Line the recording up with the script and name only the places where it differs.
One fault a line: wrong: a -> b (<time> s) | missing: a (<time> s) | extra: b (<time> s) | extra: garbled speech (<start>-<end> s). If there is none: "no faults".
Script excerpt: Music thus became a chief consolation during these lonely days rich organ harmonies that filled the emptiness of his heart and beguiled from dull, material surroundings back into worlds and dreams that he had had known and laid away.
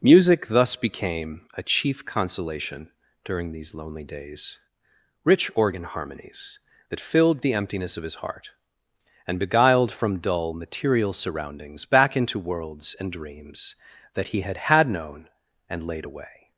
no faults